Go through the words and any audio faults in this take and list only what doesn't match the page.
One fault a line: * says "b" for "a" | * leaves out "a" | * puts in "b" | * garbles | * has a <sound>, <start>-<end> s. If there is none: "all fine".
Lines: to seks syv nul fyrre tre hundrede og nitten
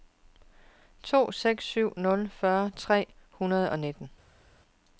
all fine